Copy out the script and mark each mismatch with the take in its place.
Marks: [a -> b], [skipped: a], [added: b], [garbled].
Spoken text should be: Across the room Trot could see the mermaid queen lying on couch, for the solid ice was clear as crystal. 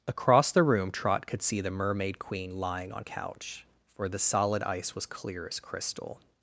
Across the room Trot could see the mermaid queen lying on couch, for the solid ice was clear as crystal.